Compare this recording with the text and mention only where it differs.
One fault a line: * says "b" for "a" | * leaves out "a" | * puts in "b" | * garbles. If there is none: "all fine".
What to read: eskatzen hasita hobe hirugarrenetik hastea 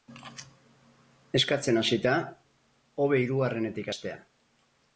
all fine